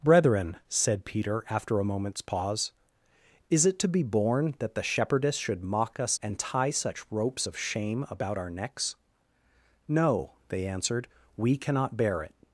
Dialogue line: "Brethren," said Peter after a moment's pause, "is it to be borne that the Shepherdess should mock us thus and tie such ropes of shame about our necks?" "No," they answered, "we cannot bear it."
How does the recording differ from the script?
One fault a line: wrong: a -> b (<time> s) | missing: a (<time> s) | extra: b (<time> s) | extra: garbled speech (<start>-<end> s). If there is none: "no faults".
missing: thus (6.2 s)